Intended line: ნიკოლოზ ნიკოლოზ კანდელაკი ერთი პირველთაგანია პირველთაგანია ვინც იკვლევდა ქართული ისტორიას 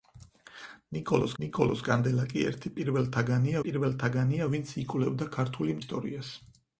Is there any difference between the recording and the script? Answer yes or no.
no